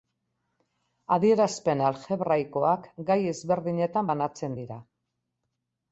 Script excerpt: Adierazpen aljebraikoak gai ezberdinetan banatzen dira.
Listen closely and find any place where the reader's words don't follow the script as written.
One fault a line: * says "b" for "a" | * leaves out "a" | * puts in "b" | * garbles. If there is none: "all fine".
all fine